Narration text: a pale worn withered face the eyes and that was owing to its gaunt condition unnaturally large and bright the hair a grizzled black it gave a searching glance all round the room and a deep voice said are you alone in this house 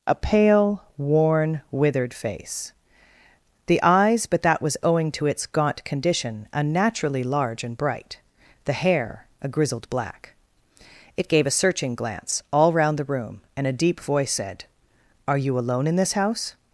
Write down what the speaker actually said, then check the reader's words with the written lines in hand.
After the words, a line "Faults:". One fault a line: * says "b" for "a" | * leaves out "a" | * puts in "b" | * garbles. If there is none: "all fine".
a pale worn withered face the eyes but that was owing to its gaunt condition unnaturally large and bright the hair a grizzled black it gave a searching glance all round the room and a deep voice said are you alone in this house
Faults:
* says "but" for "and"